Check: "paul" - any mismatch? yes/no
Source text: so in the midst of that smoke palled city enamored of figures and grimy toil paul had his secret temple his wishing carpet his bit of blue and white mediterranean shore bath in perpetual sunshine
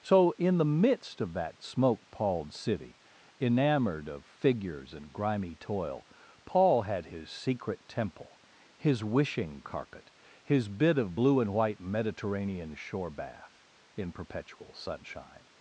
no